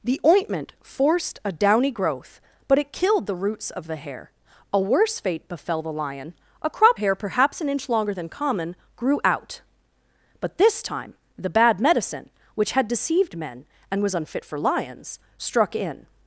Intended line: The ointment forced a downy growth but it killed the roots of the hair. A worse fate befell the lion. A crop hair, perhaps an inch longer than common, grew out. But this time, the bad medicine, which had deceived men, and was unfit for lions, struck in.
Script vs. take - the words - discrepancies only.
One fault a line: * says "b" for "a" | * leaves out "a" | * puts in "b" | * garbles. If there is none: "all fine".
all fine